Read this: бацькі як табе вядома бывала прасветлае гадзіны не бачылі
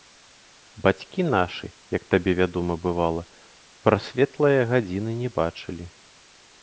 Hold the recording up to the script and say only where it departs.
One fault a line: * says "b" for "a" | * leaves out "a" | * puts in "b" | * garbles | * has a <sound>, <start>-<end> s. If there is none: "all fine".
* puts in "нашы"